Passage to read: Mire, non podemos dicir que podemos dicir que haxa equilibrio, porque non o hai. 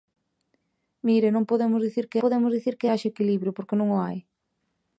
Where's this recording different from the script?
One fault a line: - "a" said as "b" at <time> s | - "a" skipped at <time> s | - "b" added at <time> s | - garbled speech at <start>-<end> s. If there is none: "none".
none